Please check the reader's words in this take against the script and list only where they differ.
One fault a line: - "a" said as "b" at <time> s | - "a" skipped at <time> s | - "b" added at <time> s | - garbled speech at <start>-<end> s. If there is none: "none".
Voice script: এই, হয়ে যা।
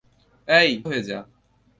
none